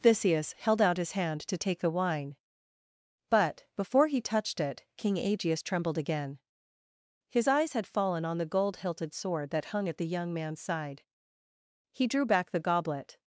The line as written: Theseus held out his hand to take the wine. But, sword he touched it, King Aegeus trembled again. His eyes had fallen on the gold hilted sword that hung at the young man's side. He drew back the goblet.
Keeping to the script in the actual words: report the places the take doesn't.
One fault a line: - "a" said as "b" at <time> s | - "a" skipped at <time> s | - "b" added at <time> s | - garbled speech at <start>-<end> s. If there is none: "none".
- "sword" said as "before" at 3.8 s